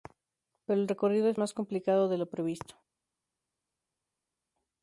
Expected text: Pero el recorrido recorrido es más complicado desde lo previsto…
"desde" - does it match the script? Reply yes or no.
no